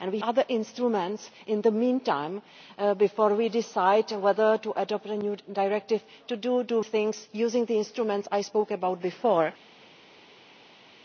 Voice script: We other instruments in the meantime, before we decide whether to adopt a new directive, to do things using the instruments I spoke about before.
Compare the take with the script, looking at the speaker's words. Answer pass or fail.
pass